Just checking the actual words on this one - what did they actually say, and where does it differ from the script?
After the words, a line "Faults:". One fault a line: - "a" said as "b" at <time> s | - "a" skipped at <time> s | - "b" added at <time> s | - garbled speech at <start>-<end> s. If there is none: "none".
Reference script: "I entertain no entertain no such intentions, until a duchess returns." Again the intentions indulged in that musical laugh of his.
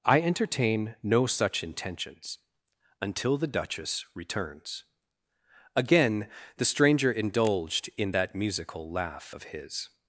"I entertain no such intentions, until the duchess returns." Again the stranger indulged in that musical laugh of his.
Faults:
- "entertain no" skipped at 1.3 s
- "a" said as "the" at 3.4 s
- "intentions" said as "stranger" at 6.6 s